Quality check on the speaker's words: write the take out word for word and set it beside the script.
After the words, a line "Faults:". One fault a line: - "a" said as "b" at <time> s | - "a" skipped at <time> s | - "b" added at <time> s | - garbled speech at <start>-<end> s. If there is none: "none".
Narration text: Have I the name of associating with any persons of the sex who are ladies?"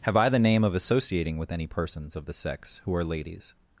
Have I the name of associating with any persons of the sex who are ladies?"
Faults:
none